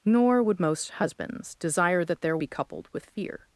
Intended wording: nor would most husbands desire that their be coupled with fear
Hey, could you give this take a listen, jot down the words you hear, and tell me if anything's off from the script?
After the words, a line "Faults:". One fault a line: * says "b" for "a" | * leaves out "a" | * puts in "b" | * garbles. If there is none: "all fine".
nor would most husbands desire that their be coupled with fear
Faults:
all fine